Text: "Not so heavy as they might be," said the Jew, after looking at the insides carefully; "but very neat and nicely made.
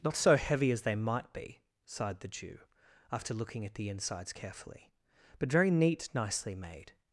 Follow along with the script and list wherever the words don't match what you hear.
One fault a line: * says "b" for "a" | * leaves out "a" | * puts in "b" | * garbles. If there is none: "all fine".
* says "sighed" for "said"
* leaves out "and"